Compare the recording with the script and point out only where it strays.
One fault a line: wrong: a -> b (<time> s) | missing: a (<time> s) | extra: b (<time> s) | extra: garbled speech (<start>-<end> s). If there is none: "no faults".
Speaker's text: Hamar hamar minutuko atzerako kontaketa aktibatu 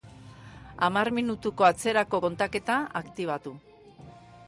missing: hamar (1.1 s)